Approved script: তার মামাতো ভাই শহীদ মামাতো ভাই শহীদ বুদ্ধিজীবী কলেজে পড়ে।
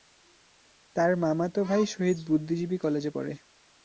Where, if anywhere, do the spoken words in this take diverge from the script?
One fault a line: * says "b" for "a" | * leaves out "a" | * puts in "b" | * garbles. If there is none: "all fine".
* leaves out "মামাতো ভাই শহীদ"